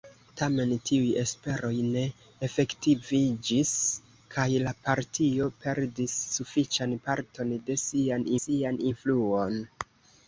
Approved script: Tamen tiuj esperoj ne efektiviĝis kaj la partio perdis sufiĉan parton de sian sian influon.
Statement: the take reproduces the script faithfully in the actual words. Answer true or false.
true